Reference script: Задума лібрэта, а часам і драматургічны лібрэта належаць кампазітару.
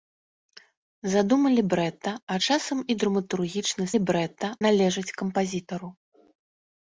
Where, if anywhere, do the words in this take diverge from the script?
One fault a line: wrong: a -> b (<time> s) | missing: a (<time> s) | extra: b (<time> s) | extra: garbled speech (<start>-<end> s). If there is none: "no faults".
no faults